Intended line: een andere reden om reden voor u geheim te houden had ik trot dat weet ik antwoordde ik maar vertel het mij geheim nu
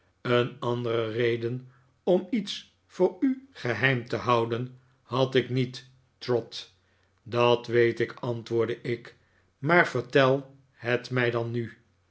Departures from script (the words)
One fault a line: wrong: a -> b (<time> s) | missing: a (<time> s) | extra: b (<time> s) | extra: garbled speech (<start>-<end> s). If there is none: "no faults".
wrong: reden -> iets (2.3 s)
extra: niet (5.5 s)
wrong: geheim -> dan (11.3 s)